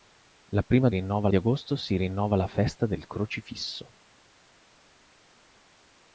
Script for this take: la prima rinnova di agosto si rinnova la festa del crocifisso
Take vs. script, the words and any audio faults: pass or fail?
pass